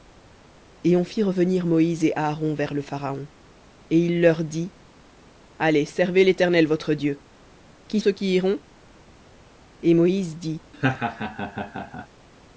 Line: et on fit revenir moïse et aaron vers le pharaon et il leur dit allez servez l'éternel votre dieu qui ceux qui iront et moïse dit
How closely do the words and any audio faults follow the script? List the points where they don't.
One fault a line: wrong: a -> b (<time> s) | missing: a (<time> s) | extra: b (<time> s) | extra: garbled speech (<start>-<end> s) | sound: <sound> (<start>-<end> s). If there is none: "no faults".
sound: laugh (10.7-12.1 s)